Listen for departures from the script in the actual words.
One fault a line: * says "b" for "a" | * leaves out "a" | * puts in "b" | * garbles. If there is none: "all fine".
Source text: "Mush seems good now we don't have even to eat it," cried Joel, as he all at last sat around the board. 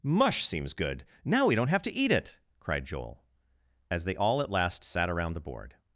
* leaves out "even"
* says "they" for "he"